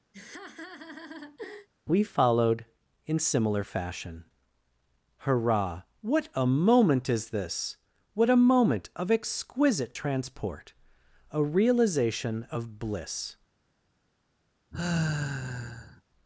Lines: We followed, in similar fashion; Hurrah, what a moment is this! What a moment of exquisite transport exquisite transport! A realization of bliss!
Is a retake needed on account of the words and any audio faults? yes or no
yes